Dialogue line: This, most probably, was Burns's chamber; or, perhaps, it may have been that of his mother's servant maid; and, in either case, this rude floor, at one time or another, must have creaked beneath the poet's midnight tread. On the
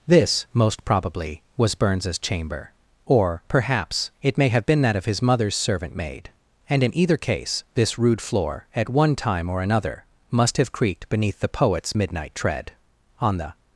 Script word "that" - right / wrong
right